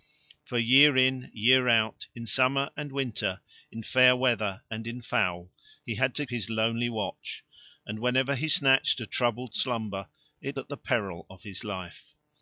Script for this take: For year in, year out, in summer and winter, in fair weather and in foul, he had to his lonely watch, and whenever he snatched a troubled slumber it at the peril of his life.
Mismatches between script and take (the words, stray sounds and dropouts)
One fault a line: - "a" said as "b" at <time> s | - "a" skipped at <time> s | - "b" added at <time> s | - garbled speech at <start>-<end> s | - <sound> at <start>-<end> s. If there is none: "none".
none